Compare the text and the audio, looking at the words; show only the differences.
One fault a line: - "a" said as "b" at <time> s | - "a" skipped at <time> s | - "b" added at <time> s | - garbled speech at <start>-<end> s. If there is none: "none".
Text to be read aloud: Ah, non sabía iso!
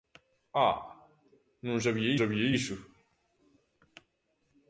- "sabía" added at 2.2 s